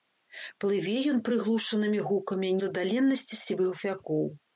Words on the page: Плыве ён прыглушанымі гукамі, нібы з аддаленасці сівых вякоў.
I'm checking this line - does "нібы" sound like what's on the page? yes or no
no